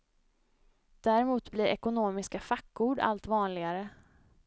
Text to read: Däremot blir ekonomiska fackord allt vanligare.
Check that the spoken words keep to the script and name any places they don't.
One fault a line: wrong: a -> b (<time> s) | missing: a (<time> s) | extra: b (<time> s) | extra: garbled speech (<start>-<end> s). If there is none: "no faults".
no faults